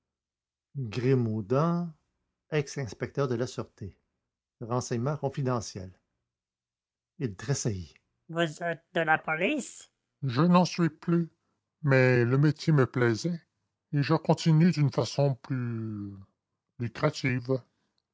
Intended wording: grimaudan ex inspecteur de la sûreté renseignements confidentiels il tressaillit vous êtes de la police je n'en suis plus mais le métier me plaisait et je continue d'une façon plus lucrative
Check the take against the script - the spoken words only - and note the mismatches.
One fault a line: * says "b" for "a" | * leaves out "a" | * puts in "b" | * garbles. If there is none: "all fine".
all fine